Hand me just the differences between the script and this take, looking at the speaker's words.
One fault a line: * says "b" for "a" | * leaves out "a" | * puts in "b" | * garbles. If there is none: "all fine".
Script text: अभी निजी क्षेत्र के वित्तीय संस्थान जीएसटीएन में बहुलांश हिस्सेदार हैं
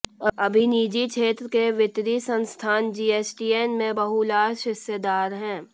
all fine